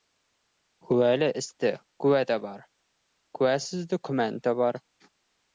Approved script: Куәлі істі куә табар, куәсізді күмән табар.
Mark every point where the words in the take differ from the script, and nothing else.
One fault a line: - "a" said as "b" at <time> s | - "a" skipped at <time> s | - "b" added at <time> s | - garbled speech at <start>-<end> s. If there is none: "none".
none